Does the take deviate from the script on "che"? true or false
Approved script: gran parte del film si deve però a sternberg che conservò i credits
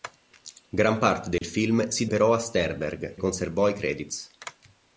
true